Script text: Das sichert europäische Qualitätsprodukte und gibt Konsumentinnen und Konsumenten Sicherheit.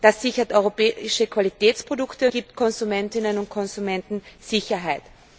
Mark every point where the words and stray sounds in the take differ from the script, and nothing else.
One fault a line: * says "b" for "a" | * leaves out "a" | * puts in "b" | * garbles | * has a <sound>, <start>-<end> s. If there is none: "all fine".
* leaves out "und"